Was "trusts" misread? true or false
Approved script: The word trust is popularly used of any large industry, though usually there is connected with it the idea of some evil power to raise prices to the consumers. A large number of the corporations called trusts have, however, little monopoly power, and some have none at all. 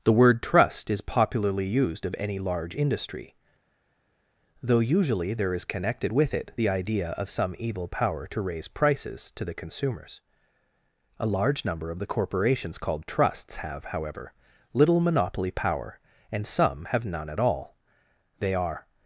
false